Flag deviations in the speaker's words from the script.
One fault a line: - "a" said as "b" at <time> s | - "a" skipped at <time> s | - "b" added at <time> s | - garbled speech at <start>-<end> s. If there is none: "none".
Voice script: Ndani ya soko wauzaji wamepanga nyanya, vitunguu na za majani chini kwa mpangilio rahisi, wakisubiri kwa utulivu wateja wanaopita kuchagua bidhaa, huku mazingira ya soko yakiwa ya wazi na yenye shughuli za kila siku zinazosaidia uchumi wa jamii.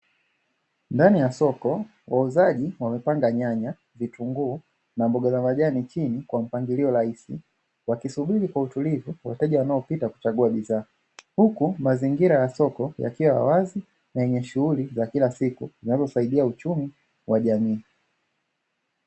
- "mboga" added at 5.1 s